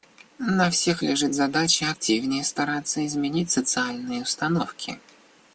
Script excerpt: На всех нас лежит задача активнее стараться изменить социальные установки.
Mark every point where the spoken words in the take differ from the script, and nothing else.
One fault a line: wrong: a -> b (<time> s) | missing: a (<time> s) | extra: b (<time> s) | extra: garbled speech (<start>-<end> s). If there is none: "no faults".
missing: нас (1.0 s)